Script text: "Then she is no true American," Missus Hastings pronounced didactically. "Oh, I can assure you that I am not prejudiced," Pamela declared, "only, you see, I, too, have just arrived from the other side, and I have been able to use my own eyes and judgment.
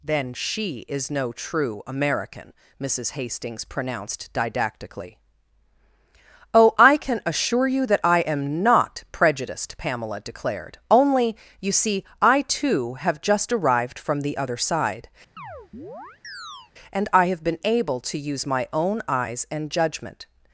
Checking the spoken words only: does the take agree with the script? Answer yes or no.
yes